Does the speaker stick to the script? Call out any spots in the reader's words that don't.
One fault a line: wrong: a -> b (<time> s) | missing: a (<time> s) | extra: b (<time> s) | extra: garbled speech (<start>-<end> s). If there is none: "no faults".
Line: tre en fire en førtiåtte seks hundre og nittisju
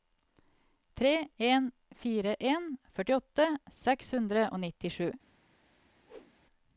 no faults